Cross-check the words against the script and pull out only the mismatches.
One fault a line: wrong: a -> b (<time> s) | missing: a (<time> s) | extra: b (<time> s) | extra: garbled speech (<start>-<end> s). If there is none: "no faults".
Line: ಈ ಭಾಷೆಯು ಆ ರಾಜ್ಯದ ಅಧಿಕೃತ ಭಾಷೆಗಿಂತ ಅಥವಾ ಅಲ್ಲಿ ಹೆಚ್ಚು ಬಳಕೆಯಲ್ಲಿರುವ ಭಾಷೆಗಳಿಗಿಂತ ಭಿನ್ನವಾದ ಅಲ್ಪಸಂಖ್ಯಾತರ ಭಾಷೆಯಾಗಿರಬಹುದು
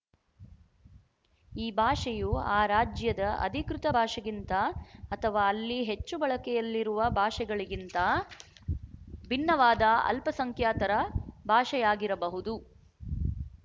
no faults